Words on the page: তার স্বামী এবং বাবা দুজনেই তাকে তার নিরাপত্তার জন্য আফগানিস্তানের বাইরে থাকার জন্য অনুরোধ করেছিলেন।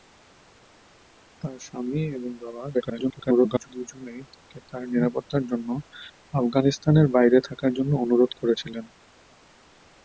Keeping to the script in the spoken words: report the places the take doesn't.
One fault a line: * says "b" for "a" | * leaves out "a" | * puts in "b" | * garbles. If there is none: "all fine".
* garbles